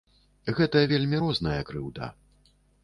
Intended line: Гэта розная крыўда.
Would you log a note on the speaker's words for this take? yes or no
yes